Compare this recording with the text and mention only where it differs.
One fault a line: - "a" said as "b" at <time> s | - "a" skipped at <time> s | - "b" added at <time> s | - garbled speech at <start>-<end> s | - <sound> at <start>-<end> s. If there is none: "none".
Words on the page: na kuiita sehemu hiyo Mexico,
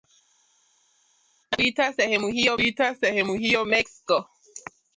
- "kuiita sehemu hiyo" added at 2.6 s